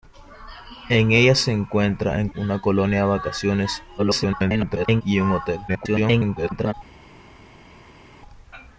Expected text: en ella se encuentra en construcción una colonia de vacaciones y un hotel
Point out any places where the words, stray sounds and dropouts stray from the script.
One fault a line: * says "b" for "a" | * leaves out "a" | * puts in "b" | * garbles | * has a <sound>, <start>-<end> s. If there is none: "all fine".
* leaves out "construcción"
* garbles
* garbles